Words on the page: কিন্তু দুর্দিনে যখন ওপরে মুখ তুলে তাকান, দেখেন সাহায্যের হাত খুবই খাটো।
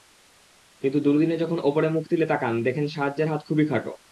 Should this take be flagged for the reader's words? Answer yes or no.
no